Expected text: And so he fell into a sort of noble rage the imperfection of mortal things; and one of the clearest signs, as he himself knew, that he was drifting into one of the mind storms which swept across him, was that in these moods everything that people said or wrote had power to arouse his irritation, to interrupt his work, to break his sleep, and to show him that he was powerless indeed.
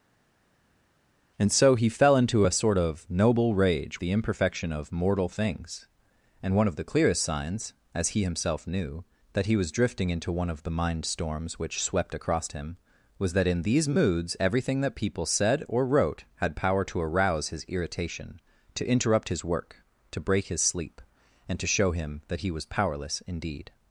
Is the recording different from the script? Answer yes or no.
no